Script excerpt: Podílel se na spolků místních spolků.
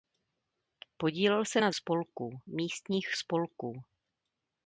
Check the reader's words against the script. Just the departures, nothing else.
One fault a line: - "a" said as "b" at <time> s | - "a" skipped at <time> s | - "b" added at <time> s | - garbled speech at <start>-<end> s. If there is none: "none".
none